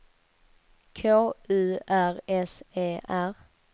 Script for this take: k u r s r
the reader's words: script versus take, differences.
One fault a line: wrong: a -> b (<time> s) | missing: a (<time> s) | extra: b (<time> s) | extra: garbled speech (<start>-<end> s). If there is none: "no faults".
extra: e (2.8 s)